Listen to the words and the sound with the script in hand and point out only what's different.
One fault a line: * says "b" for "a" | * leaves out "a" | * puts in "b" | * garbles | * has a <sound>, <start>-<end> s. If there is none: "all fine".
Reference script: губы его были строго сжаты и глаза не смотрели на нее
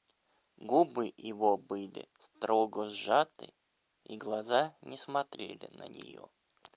all fine